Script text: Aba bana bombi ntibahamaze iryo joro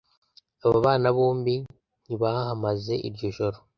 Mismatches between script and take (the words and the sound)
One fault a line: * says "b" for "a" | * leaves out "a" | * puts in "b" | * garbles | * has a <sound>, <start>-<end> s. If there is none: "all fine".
all fine